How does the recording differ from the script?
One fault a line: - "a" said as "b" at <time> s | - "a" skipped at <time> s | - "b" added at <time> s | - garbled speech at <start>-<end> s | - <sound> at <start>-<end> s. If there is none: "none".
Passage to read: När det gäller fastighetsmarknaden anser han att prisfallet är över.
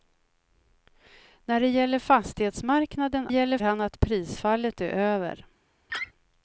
- "anser" said as "gäller" at 3.3 s
- laugh at 5.9-6.1 s